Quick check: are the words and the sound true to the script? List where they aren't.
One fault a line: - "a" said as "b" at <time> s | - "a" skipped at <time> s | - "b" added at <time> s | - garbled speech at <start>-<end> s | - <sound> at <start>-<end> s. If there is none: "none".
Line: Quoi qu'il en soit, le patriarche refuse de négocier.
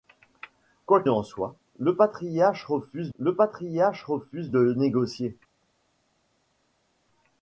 - "qu'il" skipped at 1.0 s
- "le patriarche refuse" added at 3.2 s